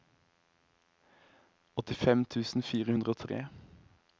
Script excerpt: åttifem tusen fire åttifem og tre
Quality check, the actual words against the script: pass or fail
fail